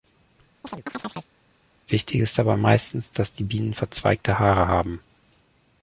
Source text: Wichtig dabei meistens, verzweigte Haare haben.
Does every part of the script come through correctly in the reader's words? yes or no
no